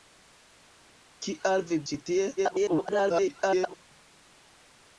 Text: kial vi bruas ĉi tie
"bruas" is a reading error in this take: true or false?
true